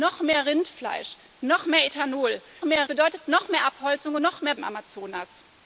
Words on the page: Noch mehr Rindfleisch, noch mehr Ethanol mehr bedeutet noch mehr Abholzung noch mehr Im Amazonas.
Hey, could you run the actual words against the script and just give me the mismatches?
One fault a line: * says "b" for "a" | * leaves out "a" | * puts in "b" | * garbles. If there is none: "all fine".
all fine